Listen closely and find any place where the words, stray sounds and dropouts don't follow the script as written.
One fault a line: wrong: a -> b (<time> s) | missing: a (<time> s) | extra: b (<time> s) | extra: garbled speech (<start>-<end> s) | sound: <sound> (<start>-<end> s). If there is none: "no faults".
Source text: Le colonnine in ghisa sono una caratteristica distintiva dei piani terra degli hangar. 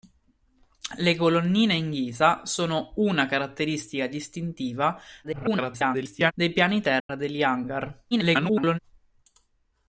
extra: garbled speech (5.2-6.3 s)
sound: dropout (7.0-7.1 s)
extra: garbled speech (8.1-8.8 s)